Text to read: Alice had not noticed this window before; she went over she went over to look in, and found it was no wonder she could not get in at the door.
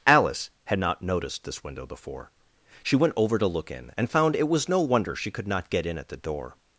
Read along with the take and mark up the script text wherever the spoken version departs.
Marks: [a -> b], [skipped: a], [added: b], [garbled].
Alice had not noticed this window before; she went over [skipped: she went over] to look in, and found it was no wonder she could not get in at the door.